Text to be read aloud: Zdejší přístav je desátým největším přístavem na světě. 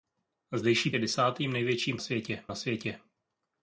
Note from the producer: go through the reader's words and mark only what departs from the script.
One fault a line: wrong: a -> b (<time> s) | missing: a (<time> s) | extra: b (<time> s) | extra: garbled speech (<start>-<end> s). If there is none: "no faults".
missing: přístav (0.9 s)
wrong: přístavem -> světě (2.0 s)